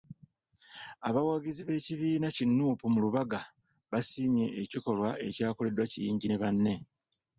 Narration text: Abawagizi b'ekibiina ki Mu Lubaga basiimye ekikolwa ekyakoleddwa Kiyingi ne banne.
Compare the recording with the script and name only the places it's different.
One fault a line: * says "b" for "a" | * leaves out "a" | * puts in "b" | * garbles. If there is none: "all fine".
* puts in "Nuupu"